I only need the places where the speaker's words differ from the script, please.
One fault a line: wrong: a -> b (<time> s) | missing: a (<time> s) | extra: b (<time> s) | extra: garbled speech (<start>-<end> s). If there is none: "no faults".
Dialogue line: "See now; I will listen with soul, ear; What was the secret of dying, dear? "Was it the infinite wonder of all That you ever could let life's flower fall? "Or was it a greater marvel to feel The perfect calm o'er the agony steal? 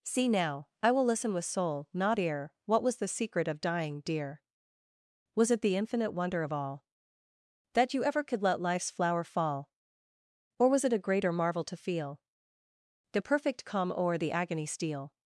extra: not (1.9 s)